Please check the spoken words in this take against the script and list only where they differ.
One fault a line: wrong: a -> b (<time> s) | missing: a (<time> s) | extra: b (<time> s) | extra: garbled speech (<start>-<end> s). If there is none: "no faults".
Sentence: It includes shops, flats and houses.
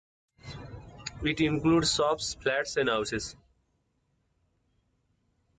no faults